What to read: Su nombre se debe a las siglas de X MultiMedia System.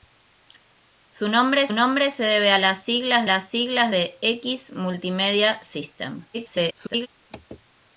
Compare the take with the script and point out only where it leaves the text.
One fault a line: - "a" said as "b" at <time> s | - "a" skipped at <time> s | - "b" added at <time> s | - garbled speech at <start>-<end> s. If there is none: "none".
- "nombre" added at 1.7 s
- "las siglas" added at 3.2 s
- garbled speech at 6.3-7.1 s